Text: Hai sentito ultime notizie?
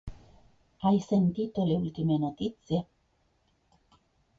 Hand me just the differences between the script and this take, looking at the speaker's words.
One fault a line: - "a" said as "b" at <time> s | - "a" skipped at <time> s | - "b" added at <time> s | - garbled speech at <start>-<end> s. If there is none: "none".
- "le" added at 1.6 s